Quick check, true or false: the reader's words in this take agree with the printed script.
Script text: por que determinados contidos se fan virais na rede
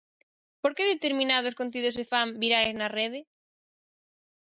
true